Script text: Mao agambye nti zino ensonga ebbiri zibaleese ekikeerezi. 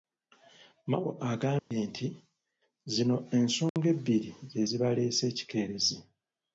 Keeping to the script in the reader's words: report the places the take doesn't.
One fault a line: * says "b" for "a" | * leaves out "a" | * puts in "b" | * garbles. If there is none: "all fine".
* puts in "ze"